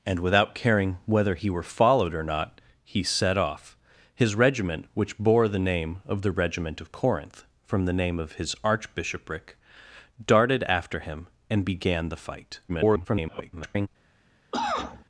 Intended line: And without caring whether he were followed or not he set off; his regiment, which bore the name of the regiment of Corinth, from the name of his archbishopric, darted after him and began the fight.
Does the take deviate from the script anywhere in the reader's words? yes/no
yes